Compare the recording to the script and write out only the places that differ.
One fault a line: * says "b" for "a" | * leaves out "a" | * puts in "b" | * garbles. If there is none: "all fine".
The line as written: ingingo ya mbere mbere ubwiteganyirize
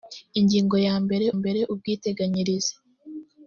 all fine